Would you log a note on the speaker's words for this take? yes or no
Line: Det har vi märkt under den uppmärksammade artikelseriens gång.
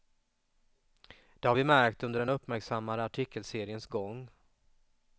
no